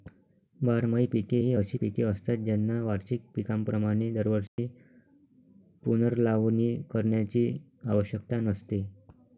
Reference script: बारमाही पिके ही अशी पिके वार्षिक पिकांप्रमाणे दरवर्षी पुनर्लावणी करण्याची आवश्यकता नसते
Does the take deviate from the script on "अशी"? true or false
false